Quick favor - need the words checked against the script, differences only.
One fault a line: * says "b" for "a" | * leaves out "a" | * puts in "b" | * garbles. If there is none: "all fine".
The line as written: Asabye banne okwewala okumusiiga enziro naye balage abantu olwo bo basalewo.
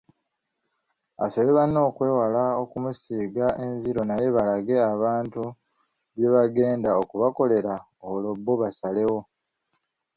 * puts in "bye bagenda okubakolera"